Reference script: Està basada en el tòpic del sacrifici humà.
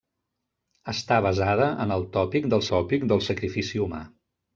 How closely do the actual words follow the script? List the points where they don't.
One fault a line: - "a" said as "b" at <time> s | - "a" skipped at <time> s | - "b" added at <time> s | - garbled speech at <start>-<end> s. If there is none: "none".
- "tòpic del" added at 2.7 s